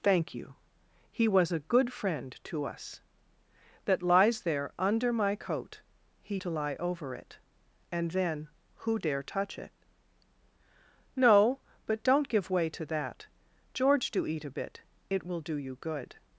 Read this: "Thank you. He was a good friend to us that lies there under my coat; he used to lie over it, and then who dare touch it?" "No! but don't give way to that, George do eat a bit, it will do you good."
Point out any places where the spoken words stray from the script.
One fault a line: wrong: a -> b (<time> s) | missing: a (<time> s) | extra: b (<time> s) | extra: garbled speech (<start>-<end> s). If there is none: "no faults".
missing: used (6.4 s)